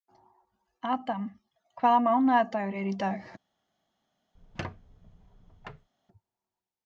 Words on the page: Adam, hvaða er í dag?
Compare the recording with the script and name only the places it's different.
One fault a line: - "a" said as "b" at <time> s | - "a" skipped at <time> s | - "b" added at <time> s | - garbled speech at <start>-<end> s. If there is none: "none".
- "mánaðardagur" added at 2.1 s